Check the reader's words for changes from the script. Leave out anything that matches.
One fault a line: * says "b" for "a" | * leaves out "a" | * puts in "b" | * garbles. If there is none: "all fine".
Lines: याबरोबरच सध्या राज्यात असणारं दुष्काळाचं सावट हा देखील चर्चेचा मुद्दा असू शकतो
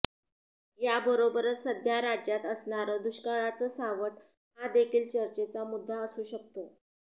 all fine